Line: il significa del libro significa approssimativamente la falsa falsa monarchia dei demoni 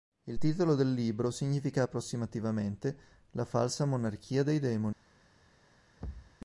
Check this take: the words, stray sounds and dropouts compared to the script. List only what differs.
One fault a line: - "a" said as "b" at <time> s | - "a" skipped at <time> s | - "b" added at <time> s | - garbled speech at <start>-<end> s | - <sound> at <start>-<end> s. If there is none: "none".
- "significa" said as "titolo" at 0.4 s
- "falsa" skipped at 3.9 s
- thud at 6.0-6.4 s